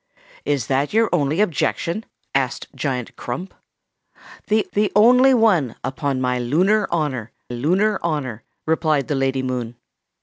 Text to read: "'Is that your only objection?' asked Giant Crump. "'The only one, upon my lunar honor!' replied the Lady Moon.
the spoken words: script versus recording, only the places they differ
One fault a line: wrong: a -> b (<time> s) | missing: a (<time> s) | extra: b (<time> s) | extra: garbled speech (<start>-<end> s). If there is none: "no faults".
extra: the (4.7 s)
extra: lunar honor (7.5 s)